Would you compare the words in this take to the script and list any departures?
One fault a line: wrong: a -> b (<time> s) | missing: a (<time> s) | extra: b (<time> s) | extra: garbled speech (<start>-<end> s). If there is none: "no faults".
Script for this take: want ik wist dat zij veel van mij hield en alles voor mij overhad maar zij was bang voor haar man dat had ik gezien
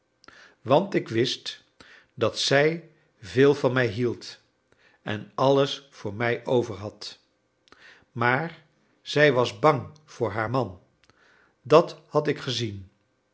no faults